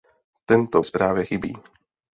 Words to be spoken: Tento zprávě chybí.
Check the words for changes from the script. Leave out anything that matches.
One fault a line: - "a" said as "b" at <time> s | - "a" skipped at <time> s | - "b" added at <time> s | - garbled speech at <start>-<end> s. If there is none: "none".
none